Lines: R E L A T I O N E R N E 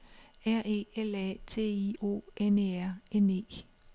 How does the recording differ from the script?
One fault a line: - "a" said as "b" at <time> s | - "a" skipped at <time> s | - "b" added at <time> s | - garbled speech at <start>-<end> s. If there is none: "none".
none